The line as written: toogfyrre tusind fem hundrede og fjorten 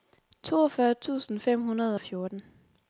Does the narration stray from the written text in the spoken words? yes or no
no